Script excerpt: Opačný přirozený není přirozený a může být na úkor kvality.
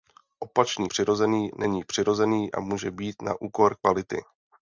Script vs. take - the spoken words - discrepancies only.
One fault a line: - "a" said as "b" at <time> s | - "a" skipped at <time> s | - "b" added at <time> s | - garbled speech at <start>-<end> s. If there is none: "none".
none